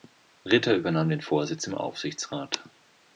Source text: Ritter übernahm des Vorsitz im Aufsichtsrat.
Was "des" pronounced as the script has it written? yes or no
no